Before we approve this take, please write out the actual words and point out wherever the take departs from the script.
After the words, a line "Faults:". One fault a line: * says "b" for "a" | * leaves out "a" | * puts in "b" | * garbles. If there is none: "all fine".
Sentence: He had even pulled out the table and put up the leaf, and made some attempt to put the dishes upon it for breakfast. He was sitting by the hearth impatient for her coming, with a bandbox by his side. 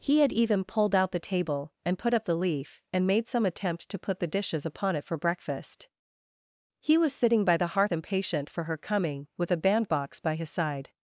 He had even pulled out the table and put up the leaf, and made some attempt to put the dishes upon it for breakfast. He was sitting by the hearth impatient for her coming, with a bandbox by his side.
Faults:
all fine